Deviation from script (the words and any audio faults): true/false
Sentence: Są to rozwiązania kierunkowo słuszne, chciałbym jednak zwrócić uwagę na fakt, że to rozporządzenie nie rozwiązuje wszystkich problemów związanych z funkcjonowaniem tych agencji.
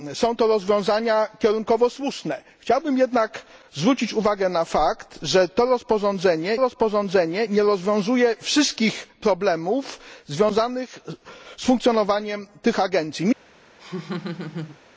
true